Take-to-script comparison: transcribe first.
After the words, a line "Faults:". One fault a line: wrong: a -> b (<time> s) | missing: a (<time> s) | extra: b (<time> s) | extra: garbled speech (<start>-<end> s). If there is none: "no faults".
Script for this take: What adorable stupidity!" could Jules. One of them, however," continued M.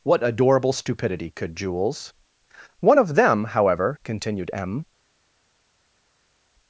What adorable stupidity!" could Jules. One of them, however," continued M.
Faults:
no faults